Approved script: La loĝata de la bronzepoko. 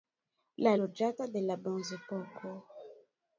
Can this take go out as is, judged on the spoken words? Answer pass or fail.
pass